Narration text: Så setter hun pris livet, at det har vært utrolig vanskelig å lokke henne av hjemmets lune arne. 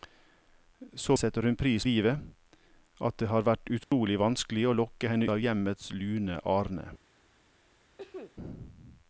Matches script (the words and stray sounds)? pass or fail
fail